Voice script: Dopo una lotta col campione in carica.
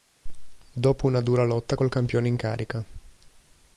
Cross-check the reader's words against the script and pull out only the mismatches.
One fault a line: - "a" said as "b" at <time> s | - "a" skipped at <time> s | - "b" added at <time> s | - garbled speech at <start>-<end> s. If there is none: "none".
- "dura" added at 1.2 s